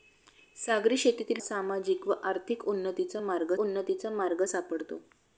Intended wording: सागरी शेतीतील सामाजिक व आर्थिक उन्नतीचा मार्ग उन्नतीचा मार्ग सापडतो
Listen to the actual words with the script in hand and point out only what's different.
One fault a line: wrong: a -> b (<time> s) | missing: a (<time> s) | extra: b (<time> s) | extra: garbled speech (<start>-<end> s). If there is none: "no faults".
no faults